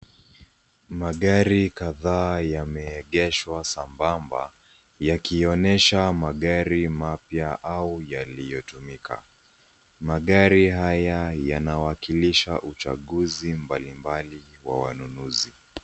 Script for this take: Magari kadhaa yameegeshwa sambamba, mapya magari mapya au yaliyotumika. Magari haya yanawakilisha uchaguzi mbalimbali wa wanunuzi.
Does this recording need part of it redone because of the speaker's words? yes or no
yes